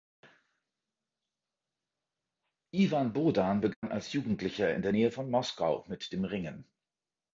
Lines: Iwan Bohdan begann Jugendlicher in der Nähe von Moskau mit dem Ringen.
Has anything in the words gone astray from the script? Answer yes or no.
yes